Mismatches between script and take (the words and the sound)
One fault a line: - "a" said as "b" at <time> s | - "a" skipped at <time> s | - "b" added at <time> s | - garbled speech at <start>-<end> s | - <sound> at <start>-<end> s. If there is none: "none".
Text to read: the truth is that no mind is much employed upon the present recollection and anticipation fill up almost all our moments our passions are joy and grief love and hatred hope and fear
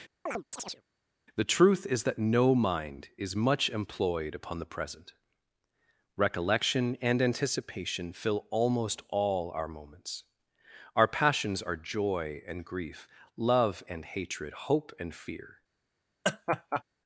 - chirp at 0.3-0.8 s
- "up" skipped at 8.5 s
- laugh at 16.2-16.8 s